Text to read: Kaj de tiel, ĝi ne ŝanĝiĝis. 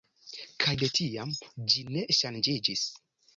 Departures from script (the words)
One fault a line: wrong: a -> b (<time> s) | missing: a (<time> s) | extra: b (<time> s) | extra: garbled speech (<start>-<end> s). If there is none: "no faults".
wrong: tiel -> tiam (1.0 s)